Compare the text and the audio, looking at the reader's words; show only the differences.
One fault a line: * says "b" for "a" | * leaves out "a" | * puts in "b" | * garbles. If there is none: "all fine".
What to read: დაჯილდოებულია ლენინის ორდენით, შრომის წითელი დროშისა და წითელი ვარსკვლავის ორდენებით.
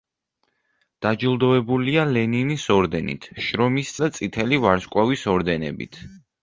* leaves out "წითელი დროშისა"